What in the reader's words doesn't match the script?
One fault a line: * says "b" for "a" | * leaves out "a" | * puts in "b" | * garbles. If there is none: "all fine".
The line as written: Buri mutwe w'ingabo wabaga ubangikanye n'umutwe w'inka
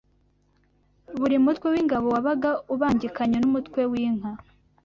all fine